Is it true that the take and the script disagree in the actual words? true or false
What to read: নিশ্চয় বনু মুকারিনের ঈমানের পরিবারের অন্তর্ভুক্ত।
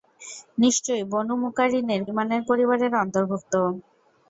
false